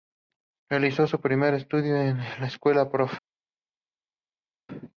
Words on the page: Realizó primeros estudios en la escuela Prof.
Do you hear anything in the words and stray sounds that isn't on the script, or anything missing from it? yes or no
yes